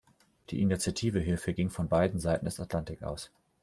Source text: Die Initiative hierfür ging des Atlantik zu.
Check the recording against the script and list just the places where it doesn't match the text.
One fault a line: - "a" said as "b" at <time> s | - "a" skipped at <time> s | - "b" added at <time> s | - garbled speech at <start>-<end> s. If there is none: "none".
- "von beiden Seiten" added at 1.7 s
- "zu" said as "aus" at 3.0 s